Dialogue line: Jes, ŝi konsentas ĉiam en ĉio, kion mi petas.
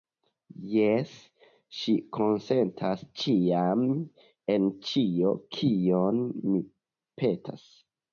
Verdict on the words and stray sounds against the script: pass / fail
pass